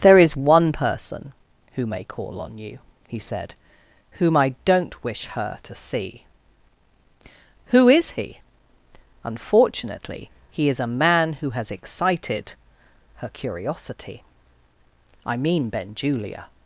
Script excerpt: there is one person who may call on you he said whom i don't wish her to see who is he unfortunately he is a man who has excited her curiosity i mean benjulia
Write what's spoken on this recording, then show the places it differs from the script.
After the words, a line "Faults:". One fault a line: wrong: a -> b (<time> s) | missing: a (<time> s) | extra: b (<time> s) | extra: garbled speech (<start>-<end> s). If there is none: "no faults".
there is one person who may call on you he said whom i don't wish her to see who is he unfortunately he is a man who has excited her curiosity i mean benjulia
Faults:
no faults